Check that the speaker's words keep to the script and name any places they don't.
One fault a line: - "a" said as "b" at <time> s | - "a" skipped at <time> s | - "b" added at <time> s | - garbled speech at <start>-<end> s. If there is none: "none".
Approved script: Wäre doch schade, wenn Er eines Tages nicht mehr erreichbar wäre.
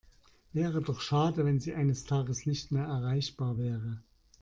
- "Er" said as "Sie" at 1.6 s